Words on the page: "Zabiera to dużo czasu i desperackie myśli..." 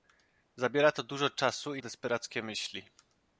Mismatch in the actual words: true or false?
false